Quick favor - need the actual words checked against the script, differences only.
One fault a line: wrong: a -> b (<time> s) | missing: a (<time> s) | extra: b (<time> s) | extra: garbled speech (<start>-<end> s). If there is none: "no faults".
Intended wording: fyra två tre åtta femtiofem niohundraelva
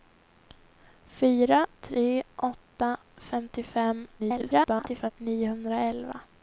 missing: två (1.7 s)
extra: garbled speech (4.2-5.1 s)